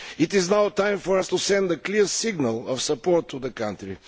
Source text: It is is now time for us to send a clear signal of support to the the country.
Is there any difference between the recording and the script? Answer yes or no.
yes